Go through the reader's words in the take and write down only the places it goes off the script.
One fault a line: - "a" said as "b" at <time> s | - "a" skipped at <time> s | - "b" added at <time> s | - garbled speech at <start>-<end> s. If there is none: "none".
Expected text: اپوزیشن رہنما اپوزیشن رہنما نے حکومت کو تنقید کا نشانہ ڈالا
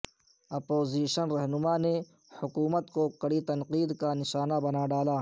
- "اپوزیشن رہنما" skipped at 1.8 s
- "کڑی" added at 3.2 s
- "بنا" added at 4.6 s